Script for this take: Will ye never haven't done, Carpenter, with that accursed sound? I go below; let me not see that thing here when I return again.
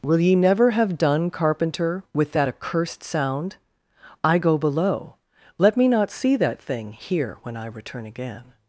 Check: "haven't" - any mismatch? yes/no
yes